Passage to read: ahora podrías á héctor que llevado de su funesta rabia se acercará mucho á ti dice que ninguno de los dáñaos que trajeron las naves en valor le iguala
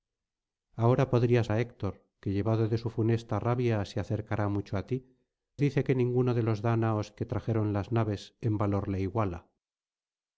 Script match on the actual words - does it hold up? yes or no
yes